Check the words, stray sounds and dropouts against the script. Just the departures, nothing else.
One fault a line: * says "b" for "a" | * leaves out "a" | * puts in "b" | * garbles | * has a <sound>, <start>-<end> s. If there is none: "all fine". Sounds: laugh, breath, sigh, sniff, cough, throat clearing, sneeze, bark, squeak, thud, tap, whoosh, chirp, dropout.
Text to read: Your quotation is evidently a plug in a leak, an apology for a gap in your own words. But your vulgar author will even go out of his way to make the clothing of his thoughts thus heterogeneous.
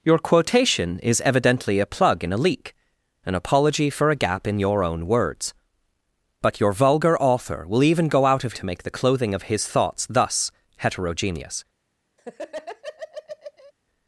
* leaves out "his way"
* has a laugh, 12.2-13.7 s